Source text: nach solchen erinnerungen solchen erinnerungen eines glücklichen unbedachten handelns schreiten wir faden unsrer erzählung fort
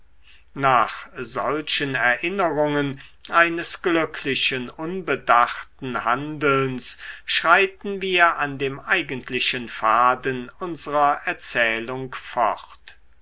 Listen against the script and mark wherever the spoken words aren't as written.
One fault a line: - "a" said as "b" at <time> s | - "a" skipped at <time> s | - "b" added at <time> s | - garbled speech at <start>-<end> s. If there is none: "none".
- "solchen erinnerungen" skipped at 3.0 s
- "an dem eigentlichen" added at 8.4 s